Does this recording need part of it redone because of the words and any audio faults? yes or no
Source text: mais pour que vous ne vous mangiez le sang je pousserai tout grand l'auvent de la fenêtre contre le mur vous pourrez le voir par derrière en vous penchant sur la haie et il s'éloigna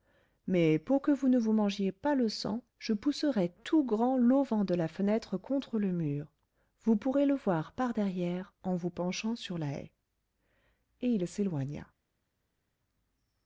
yes